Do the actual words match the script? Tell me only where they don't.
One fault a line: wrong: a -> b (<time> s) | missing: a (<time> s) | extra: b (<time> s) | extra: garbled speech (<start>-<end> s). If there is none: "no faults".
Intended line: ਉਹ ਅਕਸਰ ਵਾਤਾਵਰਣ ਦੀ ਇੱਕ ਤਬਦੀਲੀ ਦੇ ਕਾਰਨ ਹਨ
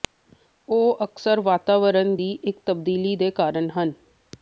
no faults